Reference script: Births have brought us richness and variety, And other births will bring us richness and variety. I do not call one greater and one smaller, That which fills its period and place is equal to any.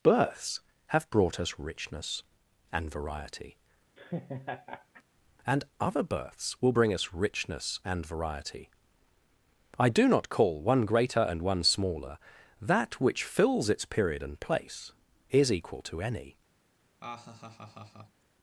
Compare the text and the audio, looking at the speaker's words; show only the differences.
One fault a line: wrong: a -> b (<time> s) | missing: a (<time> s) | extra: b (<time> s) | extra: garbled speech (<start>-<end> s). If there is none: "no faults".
no faults